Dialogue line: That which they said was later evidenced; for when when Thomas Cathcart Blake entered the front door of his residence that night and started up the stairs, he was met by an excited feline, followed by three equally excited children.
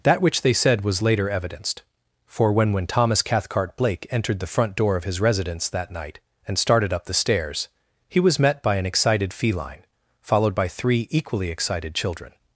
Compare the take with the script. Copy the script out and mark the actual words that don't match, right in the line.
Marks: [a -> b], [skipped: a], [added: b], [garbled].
That which they said was later evidenced; for when when Thomas Cathcart Blake entered the front door of his residence that night and started up the stairs, he was met by an excited feline, followed by three equally excited children.